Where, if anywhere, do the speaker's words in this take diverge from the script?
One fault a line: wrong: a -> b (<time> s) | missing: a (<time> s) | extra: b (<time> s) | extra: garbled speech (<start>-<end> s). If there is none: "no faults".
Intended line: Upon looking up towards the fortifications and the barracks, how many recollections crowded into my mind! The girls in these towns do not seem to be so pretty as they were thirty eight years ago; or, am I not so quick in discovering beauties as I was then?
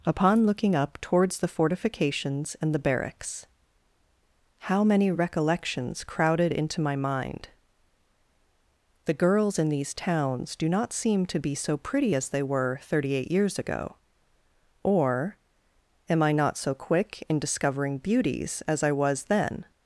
no faults